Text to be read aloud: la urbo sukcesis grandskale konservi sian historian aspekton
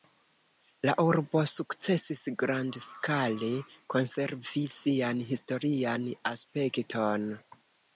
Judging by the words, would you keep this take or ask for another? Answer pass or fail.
pass